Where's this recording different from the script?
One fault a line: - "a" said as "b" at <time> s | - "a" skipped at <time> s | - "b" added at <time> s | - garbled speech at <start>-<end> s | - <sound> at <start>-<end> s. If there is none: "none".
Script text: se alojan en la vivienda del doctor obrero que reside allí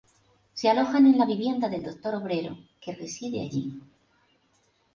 none